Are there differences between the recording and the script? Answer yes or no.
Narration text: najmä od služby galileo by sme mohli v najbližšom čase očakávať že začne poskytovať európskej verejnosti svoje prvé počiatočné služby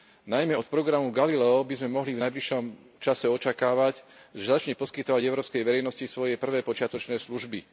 yes